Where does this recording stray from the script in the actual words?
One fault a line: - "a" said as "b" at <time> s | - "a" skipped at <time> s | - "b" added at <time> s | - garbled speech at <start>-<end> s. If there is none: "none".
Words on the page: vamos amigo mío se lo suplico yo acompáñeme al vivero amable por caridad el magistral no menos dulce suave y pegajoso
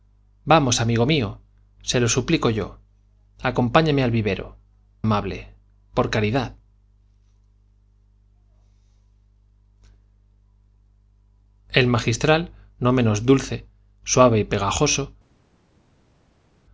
none